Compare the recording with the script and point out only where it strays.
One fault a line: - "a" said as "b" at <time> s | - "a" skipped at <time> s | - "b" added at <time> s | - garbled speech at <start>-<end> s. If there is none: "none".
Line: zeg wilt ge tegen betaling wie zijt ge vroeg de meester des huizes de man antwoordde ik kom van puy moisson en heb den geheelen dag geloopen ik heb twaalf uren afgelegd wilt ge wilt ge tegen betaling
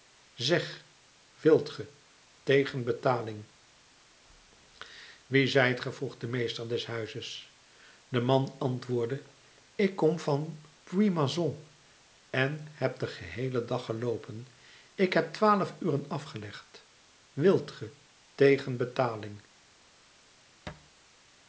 - "wilt ge" skipped at 17.9 s